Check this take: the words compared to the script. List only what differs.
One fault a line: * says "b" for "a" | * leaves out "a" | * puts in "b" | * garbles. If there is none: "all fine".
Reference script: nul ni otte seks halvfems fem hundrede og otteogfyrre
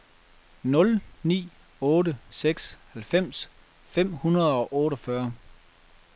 all fine